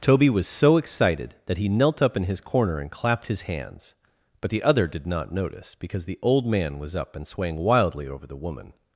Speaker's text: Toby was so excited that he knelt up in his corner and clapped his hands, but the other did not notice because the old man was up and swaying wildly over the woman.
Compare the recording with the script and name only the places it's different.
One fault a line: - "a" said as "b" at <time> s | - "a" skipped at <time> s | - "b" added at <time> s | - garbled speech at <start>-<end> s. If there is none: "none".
none